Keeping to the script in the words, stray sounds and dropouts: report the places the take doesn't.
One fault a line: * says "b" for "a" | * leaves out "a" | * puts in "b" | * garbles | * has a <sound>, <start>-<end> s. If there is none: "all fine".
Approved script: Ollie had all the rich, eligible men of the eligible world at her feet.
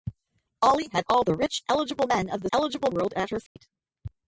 * has a dropout, 3.5-3.6 s